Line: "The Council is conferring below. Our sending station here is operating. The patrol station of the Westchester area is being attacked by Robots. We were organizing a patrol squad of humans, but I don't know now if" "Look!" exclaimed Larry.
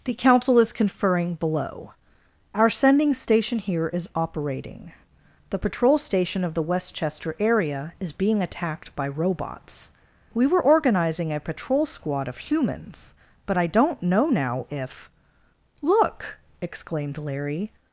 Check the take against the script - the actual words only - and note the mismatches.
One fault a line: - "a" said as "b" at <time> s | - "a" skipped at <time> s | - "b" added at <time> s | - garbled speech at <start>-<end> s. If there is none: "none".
none